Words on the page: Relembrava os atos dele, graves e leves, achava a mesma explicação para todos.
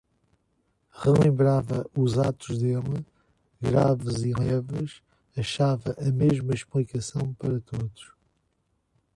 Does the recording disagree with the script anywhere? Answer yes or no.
no